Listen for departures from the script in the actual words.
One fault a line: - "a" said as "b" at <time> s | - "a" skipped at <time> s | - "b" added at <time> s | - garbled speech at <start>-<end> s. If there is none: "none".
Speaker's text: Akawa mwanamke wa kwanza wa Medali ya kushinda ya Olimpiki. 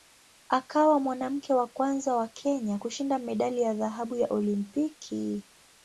- "Kenya kushinda" added at 2.3 s
- "kushinda" said as "dhahabu" at 3.7 s